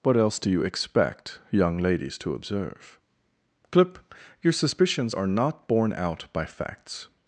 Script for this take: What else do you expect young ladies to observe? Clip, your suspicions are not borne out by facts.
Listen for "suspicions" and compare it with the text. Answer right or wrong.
right